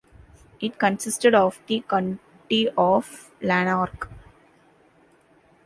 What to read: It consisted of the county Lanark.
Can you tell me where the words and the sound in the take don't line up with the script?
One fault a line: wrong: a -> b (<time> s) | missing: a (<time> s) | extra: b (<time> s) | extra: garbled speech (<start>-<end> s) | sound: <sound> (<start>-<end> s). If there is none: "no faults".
extra: of (2.8 s)